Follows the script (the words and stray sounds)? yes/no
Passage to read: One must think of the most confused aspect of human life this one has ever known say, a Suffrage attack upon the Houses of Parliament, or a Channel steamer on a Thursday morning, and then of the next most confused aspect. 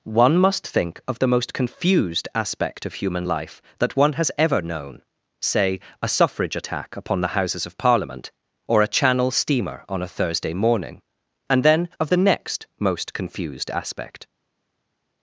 no